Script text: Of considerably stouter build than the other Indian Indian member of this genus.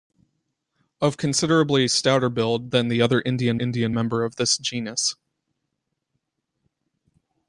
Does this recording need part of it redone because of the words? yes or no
no